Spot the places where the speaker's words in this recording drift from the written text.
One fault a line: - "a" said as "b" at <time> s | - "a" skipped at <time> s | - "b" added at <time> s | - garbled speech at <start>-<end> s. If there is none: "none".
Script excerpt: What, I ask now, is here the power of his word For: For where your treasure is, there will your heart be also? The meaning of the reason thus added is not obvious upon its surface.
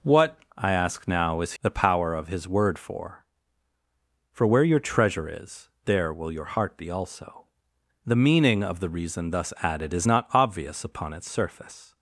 - "here" skipped at 1.5 s